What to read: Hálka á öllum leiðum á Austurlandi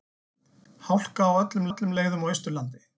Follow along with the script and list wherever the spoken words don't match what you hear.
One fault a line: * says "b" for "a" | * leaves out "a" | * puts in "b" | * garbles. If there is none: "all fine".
* puts in "öllum"